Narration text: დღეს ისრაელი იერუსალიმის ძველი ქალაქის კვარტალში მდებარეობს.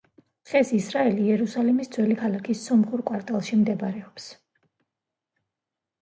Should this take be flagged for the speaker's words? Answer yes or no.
yes